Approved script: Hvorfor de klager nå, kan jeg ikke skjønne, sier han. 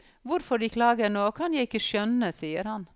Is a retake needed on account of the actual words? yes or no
no